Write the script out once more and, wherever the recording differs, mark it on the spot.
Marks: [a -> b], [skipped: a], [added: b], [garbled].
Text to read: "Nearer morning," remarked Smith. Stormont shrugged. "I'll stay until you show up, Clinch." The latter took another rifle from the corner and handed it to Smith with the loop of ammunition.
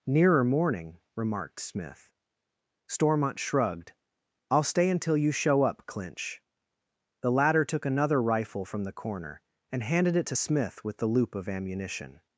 "Nearer morning," remarked Smith. Stormont shrugged. "I'll stay until you show up, Clinch." The latter took another rifle from the corner and handed it to Smith with the loop of ammunition.